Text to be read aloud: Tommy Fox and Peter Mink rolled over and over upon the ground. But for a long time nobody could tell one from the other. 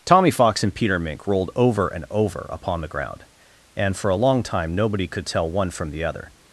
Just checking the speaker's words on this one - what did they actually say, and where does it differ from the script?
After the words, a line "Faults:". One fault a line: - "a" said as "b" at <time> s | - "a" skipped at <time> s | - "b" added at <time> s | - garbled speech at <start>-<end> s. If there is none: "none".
Tommy Fox and Peter Mink rolled over and over upon the ground. And for a long time nobody could tell one from the other.
Faults:
- "But" said as "And" at 3.8 s